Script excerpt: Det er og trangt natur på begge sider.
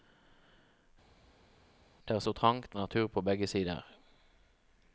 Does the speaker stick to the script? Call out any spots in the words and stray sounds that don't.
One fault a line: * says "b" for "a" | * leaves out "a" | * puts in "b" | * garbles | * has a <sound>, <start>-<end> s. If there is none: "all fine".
all fine